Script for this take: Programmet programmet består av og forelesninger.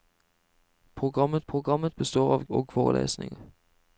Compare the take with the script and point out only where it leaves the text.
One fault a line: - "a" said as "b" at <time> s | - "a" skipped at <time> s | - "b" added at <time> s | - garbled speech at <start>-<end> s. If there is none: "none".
none